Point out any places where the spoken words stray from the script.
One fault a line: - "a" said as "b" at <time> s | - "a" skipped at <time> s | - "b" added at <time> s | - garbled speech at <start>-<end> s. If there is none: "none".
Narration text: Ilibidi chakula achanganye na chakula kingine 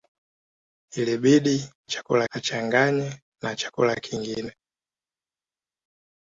none